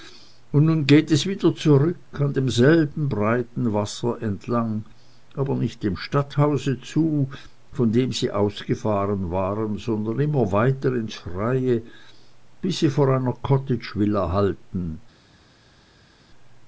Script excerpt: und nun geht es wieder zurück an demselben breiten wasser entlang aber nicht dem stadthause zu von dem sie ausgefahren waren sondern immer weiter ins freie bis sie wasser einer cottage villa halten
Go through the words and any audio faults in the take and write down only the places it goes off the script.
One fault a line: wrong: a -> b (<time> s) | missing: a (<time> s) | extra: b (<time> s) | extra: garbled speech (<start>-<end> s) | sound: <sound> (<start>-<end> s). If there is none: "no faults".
wrong: wasser -> vor (12.9 s)